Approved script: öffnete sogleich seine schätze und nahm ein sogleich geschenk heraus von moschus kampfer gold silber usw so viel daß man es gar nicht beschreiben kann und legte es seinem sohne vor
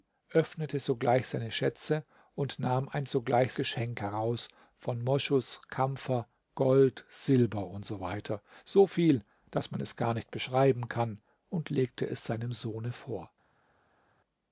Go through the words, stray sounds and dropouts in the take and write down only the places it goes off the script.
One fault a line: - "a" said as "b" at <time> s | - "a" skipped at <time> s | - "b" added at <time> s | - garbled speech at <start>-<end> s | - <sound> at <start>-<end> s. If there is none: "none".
none